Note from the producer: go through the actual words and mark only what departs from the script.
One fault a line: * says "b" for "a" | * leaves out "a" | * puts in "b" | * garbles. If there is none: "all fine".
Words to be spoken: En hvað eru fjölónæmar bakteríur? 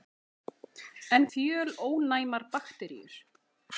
* leaves out "hvað eru"